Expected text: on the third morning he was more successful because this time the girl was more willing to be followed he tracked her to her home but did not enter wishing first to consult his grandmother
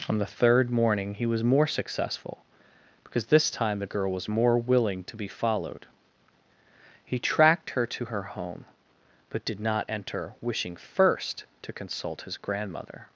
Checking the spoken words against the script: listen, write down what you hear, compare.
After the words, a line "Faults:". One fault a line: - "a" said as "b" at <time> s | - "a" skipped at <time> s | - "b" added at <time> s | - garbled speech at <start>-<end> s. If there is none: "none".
on the third morning he was more successful because this time the girl was more willing to be followed he tracked her to her home but did not enter wishing first to consult his grandmother
Faults:
none